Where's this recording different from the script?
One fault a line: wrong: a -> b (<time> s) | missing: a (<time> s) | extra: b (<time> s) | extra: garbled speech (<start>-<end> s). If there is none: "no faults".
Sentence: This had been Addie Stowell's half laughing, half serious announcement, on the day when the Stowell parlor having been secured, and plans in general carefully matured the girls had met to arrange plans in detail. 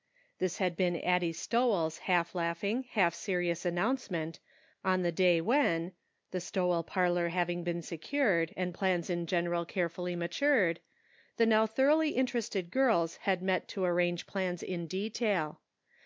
extra: now thoroughly interested (11.4 s)